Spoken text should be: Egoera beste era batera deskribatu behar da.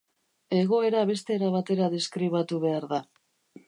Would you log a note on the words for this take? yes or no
no